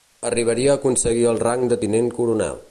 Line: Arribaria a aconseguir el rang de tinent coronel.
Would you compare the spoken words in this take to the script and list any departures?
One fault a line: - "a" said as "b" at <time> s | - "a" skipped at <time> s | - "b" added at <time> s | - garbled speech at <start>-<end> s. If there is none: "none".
none